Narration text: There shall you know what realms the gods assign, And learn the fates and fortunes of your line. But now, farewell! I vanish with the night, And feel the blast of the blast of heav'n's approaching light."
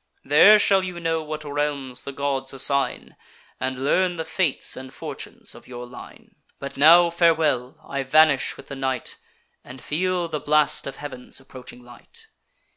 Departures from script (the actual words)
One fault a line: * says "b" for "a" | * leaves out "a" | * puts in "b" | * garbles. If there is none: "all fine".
* leaves out "the blast of"